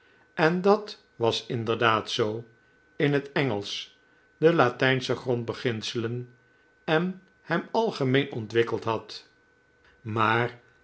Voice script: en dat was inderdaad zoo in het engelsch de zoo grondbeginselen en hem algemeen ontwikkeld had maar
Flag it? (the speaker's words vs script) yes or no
yes